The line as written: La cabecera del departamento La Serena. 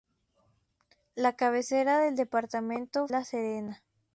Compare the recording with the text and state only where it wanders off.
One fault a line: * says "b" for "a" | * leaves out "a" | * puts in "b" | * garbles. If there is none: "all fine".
all fine